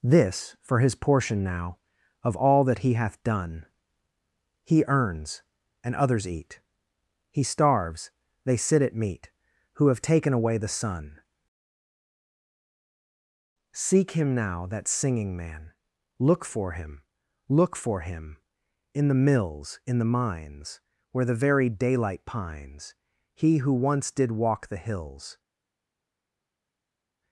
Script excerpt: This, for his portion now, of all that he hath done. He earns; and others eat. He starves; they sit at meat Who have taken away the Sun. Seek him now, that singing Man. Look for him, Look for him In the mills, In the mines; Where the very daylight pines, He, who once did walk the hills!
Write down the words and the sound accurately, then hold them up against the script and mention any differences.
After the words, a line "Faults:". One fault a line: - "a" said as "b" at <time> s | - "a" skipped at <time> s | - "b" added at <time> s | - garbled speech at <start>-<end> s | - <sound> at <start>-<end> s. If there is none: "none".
This, for his portion now, of all that he hath done. He earns; and others eat. He starves; they sit at meat Who have taken away the Sun. Seek him now, that singing Man. Look for him, Look for him In the mills, In the mines; Where the very daylight pines, He, who once did walk the hills!
Faults:
none